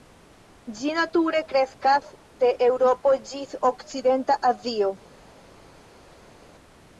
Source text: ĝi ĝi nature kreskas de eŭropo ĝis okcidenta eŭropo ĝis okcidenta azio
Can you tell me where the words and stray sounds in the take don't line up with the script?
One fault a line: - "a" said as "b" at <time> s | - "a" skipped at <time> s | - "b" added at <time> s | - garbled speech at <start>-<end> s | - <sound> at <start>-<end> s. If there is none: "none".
- "ĝi" skipped at 0.9 s
- "eŭropo ĝis okcidenta" skipped at 4.4 s